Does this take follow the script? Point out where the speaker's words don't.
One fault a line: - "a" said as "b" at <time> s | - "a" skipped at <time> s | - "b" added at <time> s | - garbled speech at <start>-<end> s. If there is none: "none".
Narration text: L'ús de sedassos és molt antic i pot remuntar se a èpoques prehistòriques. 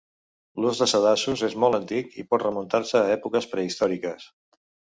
none